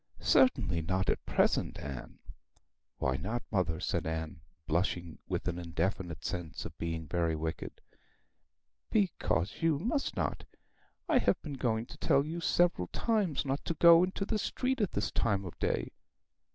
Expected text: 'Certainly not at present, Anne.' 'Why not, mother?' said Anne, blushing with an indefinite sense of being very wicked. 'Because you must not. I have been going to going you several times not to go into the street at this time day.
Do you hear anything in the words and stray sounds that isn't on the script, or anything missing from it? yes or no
yes